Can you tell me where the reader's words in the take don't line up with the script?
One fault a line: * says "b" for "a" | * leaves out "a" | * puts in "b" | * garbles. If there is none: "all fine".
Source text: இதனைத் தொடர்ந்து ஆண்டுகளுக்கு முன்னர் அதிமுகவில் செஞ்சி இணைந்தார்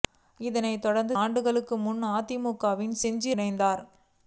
all fine